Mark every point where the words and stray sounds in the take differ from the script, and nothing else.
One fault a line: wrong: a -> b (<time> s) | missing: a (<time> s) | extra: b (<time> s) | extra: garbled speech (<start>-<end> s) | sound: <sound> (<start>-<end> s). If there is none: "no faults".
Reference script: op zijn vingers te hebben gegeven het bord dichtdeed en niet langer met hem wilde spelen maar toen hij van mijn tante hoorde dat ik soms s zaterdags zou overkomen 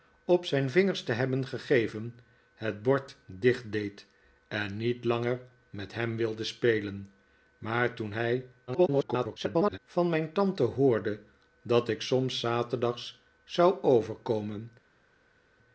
extra: garbled speech (8.7-9.8 s)